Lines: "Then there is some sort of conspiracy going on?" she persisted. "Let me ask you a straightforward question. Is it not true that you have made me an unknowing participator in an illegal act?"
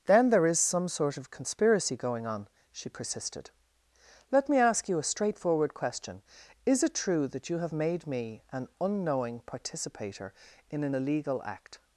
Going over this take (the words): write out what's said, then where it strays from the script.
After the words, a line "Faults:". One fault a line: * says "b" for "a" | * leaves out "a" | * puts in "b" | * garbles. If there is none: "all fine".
"Then there is some sort of conspiracy going on?" she persisted. "Let me ask you a straightforward question. Is it true that you have made me an unknowing participator in an illegal act?"
Faults:
* leaves out "not"